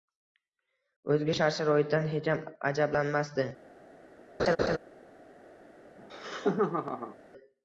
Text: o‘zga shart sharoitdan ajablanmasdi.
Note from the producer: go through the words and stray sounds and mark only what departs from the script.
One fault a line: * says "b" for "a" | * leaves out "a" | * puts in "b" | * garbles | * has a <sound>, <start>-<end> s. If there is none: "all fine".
* puts in "hecham"
* has a laugh, 4.4-4.8 s
* has a laugh, 6.0-7.2 s